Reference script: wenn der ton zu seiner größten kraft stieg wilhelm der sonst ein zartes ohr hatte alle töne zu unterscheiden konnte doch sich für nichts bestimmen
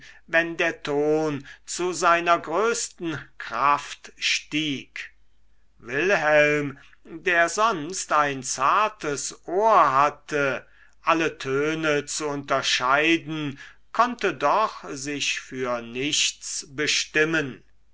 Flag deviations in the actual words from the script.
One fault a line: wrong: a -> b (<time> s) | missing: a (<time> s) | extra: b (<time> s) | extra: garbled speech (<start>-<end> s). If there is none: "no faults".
no faults